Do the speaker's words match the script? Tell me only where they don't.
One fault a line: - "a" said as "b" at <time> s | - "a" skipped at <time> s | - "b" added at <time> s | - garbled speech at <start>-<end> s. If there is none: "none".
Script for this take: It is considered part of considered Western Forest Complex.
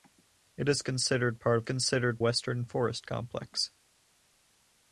none